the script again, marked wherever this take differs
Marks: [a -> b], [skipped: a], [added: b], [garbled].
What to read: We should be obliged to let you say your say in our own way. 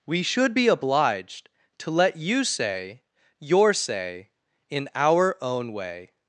We should be obliged to let you say your say in our own way.